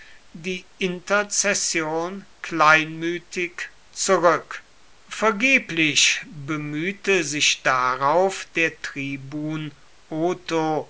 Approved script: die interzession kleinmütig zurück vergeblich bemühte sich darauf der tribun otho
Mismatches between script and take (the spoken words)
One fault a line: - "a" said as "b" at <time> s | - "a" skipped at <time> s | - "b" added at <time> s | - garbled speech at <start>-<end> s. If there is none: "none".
none